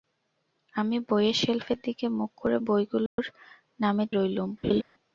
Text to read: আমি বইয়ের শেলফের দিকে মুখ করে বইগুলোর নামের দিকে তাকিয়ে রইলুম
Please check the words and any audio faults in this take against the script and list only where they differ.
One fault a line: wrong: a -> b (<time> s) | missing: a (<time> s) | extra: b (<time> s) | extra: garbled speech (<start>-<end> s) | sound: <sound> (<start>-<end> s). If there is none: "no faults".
sound: dropout (3.1-3.2 s)
missing: দিকে তাকিয়ে (4.1 s)
sound: laugh (4.6-4.8 s)